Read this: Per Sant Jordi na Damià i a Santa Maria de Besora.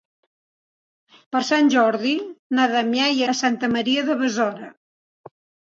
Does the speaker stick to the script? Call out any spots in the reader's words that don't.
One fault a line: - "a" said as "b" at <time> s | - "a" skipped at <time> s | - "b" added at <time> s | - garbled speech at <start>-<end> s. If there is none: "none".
none